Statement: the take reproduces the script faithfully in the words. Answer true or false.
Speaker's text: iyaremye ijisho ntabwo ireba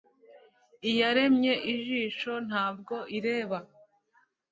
true